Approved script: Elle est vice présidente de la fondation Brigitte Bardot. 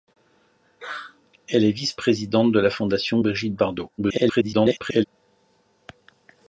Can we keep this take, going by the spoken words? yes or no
no